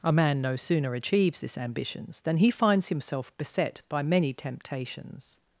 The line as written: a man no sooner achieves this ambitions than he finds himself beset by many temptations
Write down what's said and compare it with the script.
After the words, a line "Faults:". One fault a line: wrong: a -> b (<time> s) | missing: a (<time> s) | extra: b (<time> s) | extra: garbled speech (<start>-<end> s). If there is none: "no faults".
a man no sooner achieves this ambitions than he finds himself beset by many temptations
Faults:
no faults